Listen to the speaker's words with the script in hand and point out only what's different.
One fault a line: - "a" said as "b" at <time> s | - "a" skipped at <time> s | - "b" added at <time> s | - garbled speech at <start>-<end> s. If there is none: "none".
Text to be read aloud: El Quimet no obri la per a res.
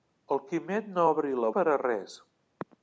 none